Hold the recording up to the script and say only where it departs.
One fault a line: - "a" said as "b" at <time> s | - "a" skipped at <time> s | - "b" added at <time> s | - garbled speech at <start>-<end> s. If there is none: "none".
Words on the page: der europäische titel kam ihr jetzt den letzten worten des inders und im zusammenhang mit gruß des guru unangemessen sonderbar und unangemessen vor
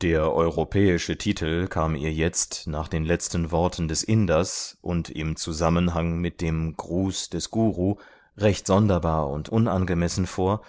- "nach" added at 2.7 s
- "dem" added at 6.4 s
- "unangemessen" said as "recht" at 8.4 s